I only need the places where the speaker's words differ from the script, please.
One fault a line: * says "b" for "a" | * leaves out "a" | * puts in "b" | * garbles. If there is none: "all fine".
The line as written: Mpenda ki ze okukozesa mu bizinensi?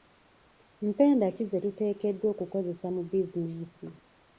* puts in "tuteekeddwa"